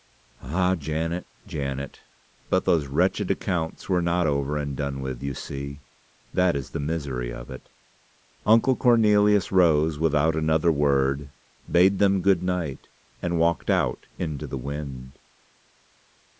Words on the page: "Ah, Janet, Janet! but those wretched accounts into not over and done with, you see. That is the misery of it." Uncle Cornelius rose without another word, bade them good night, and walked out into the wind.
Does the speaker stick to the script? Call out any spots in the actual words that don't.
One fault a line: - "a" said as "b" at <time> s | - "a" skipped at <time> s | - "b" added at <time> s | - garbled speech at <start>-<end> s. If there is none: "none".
- "into" said as "were" at 3.9 s